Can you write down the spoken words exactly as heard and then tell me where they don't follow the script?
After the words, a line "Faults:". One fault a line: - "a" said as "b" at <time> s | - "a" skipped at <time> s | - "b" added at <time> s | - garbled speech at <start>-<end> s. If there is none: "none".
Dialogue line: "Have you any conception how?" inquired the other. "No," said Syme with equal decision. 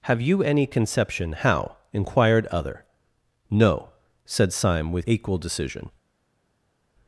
"Have you any conception how?" inquired other. "No," said Syme with equal decision.
Faults:
- "the" skipped at 2.5 s